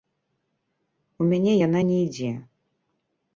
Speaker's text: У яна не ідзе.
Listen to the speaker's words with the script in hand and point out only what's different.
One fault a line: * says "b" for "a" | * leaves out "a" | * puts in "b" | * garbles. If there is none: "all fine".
* puts in "мяне"